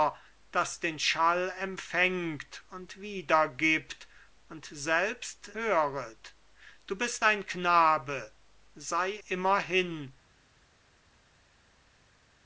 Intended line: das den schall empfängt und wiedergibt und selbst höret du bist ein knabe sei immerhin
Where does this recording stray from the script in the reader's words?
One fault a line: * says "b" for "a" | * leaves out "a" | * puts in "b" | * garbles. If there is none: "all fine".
all fine